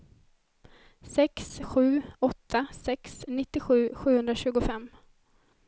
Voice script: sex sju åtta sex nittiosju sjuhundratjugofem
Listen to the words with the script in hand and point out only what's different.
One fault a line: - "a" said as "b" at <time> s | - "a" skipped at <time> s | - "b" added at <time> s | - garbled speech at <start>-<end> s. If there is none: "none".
none